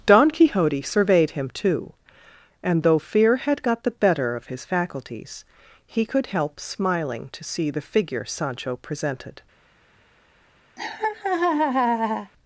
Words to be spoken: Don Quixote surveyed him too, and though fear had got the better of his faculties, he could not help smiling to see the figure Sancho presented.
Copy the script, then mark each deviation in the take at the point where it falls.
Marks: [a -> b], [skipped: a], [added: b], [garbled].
Don Quixote surveyed him too, and though fear had got the better of his faculties, he could [skipped: not] help smiling to see the figure Sancho presented.